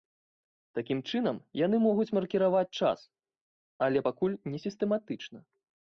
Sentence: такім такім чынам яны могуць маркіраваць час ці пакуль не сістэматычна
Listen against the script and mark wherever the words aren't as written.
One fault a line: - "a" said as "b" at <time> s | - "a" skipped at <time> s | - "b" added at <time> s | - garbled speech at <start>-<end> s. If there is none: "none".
- "такім" skipped at 1.0 s
- "ці" said as "але" at 3.9 s